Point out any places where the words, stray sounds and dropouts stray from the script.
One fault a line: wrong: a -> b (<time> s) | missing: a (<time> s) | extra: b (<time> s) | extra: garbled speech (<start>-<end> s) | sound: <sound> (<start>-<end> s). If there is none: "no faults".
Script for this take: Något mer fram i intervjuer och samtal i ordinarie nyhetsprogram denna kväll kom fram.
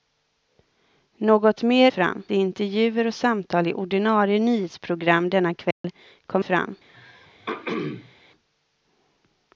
sound: dropout (5.7-5.8 s)
sound: throat clearing (6.9-8.1 s)